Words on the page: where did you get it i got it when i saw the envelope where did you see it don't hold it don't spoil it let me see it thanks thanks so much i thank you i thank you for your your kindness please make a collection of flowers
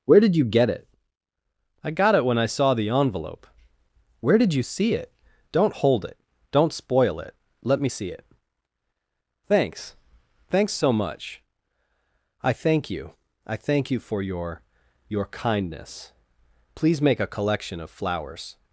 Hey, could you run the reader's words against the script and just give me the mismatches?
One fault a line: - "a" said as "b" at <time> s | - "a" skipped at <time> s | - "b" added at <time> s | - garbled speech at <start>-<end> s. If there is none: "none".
none